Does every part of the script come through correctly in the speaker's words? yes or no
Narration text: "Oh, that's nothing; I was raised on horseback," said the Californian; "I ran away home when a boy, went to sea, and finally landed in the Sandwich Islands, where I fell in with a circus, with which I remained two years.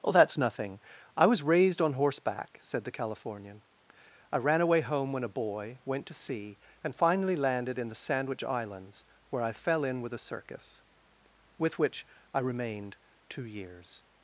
yes